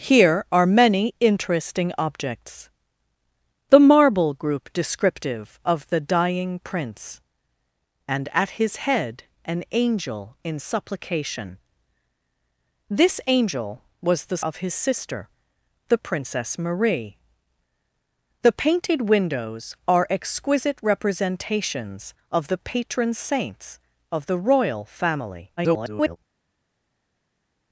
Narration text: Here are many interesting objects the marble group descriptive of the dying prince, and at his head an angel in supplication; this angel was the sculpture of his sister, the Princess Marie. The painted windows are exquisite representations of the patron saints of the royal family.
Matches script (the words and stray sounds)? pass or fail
fail